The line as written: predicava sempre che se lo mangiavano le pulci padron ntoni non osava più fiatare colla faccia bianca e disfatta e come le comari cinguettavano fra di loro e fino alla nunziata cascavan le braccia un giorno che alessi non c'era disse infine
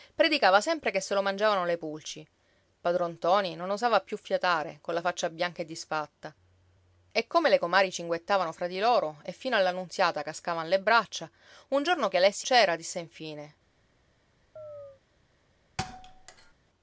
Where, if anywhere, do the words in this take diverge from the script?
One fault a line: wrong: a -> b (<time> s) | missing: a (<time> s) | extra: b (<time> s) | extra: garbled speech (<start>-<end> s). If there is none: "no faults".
missing: non (12.5 s)